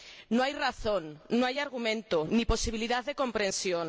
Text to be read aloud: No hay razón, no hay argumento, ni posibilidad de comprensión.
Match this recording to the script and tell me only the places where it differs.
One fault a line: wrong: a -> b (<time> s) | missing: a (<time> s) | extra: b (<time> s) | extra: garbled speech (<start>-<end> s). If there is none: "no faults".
no faults